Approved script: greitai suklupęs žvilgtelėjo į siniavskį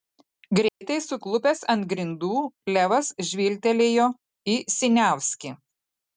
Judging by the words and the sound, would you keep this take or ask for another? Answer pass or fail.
fail